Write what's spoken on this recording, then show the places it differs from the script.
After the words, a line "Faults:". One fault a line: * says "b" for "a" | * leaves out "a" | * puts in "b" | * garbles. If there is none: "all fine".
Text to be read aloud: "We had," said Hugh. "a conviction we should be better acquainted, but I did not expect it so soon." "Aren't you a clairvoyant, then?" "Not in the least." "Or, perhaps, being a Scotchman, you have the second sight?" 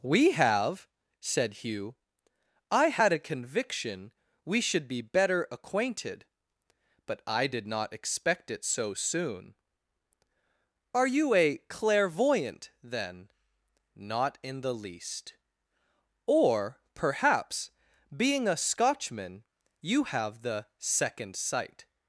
"We have," said Hugh. "I had a conviction we should be better acquainted, but I did not expect it so soon." "Are you a clairvoyant, then?" "Not in the least." "Or, perhaps, being a Scotchman, you have the second sight?"
Faults:
* says "have" for "had"
* puts in "I had"
* says "Are" for "Aren't"